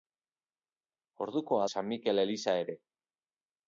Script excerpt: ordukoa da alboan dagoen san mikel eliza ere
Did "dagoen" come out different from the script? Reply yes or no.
yes